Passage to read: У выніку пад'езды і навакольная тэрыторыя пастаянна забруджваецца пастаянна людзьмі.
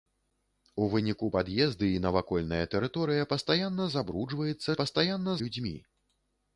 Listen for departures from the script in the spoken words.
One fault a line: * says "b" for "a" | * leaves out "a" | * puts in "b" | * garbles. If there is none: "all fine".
all fine